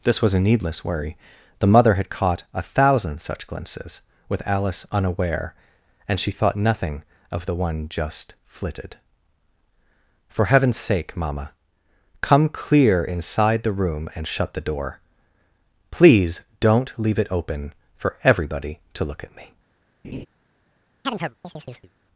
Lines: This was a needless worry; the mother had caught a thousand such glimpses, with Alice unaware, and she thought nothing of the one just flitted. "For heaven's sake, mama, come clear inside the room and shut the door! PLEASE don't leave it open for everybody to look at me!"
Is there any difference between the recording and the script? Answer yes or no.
no